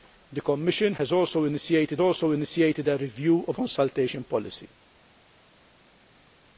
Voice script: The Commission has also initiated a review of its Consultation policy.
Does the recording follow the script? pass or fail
fail